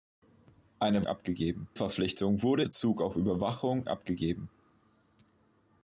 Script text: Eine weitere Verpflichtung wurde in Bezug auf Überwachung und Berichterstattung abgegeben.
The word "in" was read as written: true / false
false